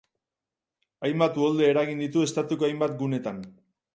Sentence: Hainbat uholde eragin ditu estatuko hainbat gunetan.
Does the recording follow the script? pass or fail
pass